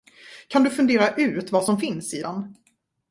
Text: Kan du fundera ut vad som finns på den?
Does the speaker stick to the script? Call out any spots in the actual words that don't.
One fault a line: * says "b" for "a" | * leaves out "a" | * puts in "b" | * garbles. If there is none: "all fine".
* says "i" for "på"